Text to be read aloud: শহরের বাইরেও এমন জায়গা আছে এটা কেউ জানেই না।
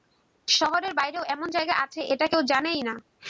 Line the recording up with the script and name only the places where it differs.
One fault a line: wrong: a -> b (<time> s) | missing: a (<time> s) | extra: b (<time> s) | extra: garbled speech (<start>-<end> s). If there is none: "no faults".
no faults